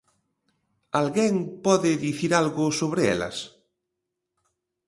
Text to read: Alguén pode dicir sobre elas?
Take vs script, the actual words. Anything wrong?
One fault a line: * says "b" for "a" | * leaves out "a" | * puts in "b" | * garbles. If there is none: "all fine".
* puts in "algo"